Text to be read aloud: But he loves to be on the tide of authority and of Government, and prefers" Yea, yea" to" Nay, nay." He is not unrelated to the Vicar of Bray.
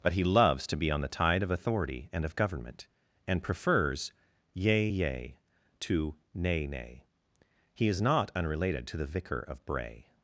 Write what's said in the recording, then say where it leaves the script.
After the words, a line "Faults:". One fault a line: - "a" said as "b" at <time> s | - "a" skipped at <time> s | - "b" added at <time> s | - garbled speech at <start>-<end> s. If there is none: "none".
But he loves to be on the tide of authority and of Government, and prefers" Yea, yea" to" Nay, nay." He is not unrelated to the Vicar of Bray.
Faults:
none